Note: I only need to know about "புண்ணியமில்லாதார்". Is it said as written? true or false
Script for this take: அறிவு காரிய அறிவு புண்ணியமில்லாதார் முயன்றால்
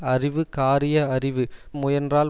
false